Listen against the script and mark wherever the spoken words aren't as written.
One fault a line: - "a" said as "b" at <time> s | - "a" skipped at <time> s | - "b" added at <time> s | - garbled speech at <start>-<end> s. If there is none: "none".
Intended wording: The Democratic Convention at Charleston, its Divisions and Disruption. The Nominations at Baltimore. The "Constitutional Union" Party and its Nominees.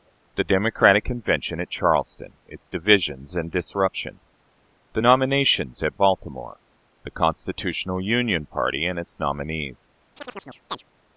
none